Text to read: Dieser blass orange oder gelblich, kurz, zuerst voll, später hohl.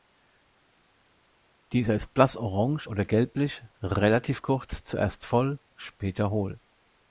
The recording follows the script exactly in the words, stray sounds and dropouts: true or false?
false